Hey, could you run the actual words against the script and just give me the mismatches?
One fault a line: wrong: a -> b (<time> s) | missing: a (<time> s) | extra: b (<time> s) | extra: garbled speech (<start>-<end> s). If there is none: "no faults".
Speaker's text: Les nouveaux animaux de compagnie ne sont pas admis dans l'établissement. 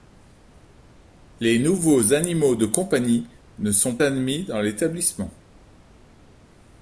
missing: pas (4.0 s)